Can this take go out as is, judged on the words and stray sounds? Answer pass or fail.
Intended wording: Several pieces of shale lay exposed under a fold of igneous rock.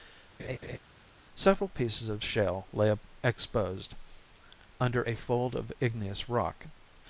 fail